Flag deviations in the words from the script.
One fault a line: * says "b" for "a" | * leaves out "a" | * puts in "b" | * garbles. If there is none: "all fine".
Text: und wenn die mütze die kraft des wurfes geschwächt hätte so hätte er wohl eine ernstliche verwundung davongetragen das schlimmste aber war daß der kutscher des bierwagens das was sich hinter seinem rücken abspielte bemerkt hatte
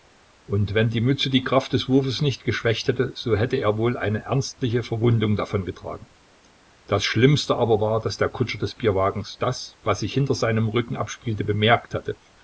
* puts in "nicht"